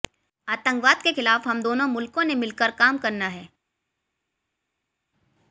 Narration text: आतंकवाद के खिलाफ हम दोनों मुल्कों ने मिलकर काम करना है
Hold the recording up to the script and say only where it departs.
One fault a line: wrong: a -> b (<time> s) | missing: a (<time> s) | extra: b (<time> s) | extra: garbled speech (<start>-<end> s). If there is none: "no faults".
no faults